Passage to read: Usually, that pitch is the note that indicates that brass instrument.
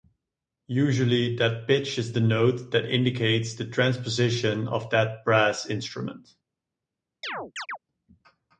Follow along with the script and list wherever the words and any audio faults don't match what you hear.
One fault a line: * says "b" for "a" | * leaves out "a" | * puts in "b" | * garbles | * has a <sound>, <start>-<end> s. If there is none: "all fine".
* puts in "the transposition of"
* has a chirp, 7.2-7.8 s